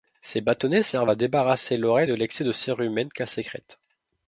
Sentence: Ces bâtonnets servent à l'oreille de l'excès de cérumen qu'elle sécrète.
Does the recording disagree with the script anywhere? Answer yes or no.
yes